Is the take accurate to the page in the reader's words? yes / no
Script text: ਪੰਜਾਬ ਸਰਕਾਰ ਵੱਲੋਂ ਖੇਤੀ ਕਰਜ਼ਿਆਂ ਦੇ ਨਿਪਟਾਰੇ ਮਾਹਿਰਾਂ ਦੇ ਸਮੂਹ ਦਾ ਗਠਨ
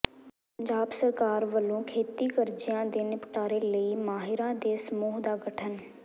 no